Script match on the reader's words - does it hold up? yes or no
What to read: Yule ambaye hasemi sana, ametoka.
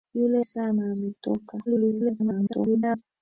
no